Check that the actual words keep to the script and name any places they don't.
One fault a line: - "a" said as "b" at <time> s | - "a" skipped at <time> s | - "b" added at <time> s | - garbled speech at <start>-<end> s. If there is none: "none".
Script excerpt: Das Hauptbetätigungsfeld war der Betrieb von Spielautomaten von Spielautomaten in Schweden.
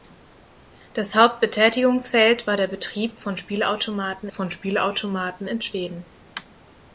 none